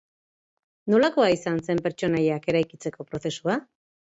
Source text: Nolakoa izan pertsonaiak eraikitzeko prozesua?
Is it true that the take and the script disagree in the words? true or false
true